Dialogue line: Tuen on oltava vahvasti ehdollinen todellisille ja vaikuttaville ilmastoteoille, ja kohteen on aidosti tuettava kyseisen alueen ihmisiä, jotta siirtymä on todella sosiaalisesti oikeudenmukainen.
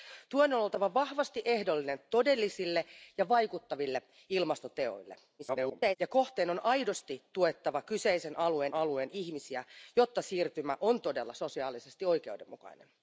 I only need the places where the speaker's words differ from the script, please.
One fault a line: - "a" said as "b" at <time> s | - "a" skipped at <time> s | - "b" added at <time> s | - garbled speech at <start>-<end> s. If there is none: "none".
- garbled speech at 5.4-6.0 s
- "alueen" added at 8.7 s